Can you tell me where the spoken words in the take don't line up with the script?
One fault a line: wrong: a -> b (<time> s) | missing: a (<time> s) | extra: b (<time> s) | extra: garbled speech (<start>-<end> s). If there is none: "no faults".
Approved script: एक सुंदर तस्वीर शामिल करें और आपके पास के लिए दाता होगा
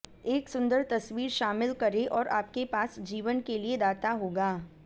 extra: जीवन (3.0 s)